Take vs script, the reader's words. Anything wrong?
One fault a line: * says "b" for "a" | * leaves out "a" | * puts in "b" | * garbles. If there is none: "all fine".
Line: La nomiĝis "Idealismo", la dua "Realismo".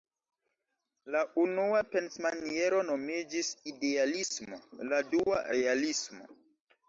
* puts in "unua pensmaniero"